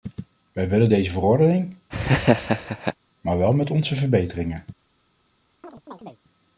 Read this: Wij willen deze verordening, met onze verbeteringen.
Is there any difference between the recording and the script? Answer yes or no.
yes